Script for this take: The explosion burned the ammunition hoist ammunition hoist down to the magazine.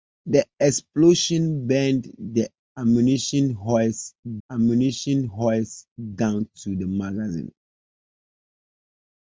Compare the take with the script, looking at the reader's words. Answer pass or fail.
pass